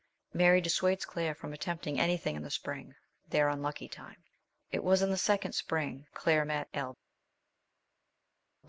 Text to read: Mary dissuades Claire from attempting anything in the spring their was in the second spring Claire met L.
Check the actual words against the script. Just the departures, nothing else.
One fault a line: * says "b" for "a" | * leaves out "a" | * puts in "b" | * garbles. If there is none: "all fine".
* puts in "unlucky time It"